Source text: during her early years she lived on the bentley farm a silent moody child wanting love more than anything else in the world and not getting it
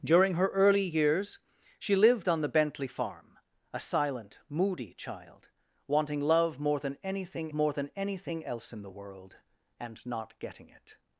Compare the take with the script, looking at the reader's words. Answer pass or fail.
fail